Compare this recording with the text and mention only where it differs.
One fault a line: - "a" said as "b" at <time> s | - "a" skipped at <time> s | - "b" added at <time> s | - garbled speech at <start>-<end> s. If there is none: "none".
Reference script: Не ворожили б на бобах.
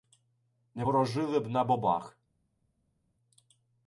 none